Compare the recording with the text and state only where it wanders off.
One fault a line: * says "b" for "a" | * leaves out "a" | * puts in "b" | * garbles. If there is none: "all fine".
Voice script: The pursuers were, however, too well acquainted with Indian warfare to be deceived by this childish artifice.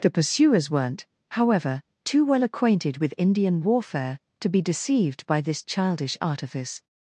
* says "weren't" for "were"